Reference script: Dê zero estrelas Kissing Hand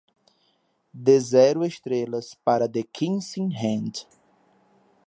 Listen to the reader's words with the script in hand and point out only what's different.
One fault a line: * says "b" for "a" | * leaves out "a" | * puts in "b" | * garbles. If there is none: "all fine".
* puts in "para The"